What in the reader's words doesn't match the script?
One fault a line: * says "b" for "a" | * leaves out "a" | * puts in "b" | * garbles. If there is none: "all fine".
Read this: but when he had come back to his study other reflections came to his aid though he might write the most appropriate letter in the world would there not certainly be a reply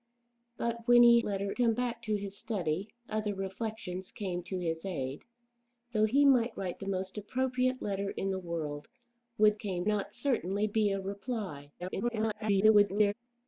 * says "letter" for "had"
* says "came" for "there"
* garbles